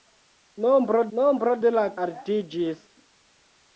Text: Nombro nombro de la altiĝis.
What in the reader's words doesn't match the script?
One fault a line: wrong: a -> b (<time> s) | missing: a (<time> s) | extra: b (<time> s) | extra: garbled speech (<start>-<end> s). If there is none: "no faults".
no faults